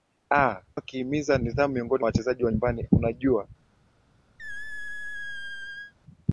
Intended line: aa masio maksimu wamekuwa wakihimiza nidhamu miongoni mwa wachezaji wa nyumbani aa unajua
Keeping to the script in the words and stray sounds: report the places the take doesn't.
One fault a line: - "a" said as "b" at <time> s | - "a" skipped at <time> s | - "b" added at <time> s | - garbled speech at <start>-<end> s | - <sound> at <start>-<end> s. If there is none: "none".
- "masio maksimu wamekuwa" skipped at 0.6 s
- "mwa" skipped at 2.0 s
- "aa" skipped at 2.9 s
- squeak at 4.4-5.9 s